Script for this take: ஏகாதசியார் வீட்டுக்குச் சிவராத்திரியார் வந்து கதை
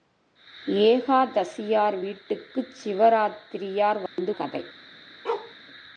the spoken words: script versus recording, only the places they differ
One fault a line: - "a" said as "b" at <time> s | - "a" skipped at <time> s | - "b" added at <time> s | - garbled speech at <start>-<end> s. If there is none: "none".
none